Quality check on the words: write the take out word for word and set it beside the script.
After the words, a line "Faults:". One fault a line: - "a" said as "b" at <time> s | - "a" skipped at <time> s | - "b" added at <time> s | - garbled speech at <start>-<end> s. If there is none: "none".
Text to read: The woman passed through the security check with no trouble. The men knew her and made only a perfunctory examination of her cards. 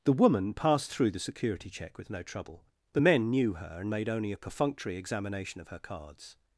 The woman passed through the security check with no trouble. The men knew her and made only a perfunctory examination of her cards.
Faults:
none